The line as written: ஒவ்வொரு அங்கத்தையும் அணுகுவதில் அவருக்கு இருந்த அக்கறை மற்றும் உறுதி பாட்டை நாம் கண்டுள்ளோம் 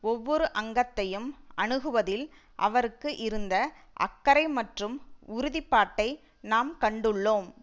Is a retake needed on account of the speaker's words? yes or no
no